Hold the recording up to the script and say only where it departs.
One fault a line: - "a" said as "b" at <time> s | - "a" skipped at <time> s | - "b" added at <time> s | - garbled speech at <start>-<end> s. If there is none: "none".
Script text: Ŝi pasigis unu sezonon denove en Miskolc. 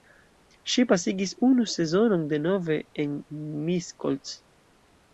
none